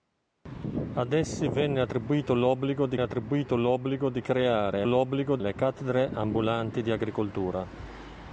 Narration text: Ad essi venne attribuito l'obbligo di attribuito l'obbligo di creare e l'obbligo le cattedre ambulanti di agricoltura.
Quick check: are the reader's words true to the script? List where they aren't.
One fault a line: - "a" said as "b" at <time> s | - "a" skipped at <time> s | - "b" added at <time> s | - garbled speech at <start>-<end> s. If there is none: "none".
none